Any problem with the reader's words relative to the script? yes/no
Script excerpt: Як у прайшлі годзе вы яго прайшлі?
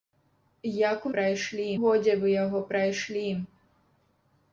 no